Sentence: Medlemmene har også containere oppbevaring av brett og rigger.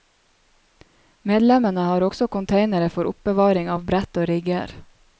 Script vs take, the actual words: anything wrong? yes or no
yes